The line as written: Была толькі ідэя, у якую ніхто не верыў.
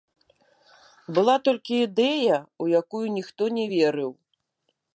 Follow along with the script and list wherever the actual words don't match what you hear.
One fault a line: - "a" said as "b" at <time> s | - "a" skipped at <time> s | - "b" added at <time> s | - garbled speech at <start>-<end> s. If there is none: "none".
none